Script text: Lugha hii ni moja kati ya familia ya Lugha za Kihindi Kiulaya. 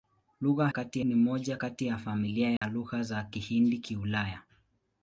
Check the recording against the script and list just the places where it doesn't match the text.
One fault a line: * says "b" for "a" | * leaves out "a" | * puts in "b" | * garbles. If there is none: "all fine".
* says "kati" for "hii"